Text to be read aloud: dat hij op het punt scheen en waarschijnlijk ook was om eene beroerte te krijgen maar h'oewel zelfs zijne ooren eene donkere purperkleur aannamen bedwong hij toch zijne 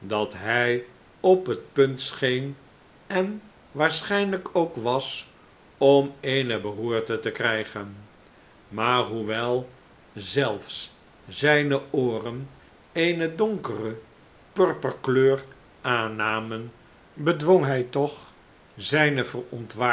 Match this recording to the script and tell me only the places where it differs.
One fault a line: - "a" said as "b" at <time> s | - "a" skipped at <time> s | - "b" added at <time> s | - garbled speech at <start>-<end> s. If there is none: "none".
none